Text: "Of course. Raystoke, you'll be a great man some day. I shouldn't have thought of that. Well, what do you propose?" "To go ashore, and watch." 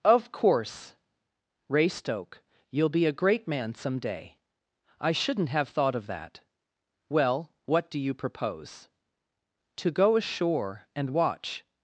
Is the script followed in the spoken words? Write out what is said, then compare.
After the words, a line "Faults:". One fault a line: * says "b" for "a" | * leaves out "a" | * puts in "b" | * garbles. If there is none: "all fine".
"Of course. Raystoke, you'll be a great man some day. I shouldn't have thought of that. Well, what do you propose?" "To go ashore, and watch."
Faults:
all fine